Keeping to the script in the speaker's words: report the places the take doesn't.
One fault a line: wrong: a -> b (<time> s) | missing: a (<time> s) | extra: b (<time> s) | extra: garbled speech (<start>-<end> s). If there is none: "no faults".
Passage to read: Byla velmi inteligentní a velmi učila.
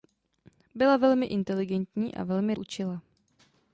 no faults